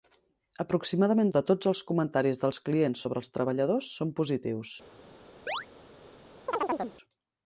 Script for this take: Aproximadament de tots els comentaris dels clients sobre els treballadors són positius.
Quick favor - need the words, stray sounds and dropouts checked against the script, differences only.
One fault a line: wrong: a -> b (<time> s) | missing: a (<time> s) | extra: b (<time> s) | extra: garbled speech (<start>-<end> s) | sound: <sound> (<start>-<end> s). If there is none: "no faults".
sound: chirp (5.5-5.7 s)
sound: chirp (6.5-7.0 s)